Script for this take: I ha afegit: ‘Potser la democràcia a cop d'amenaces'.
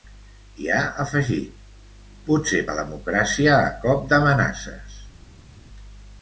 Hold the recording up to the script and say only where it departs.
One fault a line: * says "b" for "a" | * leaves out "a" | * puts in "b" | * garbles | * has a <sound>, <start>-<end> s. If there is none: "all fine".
all fine